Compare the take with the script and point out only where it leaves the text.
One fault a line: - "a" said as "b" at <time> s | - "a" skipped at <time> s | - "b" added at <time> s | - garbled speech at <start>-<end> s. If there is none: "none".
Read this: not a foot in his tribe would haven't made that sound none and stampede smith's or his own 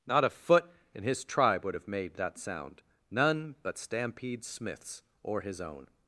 - "haven't" said as "have" at 1.8 s
- "and" said as "but" at 3.6 s